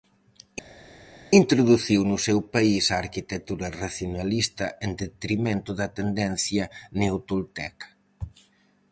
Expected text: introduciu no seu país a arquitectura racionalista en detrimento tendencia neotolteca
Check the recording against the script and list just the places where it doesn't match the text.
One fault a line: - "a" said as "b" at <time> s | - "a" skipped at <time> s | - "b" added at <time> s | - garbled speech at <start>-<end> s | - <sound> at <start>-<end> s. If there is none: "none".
- "da" added at 5.8 s